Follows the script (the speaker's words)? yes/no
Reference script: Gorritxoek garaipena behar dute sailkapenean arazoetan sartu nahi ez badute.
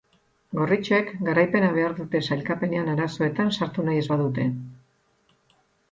yes